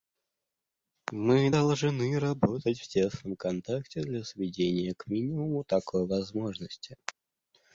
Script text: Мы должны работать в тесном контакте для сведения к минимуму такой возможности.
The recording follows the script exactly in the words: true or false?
true